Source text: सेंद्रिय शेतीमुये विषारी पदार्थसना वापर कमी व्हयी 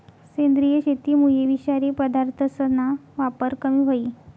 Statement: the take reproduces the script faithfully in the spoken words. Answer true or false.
true